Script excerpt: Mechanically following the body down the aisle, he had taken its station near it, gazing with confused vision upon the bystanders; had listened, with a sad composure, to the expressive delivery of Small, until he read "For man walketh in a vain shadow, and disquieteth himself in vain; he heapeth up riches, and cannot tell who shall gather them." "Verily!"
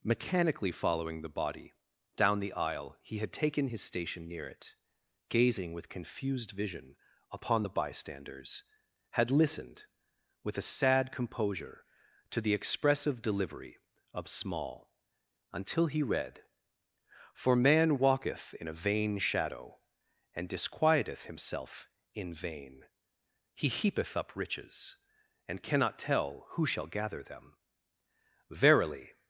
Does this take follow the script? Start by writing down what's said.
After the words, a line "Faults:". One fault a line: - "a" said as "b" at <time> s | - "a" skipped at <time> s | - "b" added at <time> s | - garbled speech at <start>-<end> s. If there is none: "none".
Mechanically following the body down the aisle, he had taken his station near it, gazing with confused vision upon the bystanders; had listened, with a sad composure, to the expressive delivery of Small, until he read "For man walketh in a vain shadow, and disquieteth himself in vain; he heapeth up riches, and cannot tell who shall gather them." "Verily!"
Faults:
- "its" said as "his" at 3.6 s